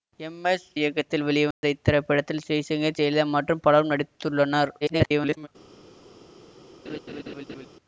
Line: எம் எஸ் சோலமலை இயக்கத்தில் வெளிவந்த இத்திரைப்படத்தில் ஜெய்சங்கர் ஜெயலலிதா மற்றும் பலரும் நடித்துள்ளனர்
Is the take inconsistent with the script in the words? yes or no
yes